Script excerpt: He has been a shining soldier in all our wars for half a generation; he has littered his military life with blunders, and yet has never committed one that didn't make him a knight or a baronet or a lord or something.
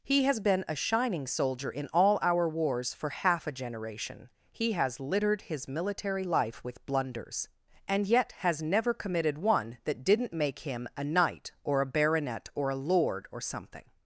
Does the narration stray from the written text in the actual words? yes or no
no